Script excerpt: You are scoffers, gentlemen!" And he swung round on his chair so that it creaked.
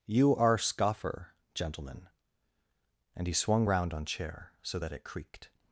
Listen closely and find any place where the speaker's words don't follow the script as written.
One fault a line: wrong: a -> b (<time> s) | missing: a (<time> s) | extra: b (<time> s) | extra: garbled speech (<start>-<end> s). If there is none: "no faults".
wrong: scoffers -> scoffer (0.6 s)
missing: his (4.1 s)